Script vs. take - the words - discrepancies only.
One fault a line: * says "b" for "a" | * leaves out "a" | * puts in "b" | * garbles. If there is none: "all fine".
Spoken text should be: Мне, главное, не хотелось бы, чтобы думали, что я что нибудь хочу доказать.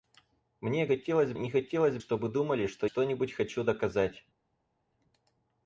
* says "хотелось" for "главное"
* leaves out "бы"
* leaves out "я"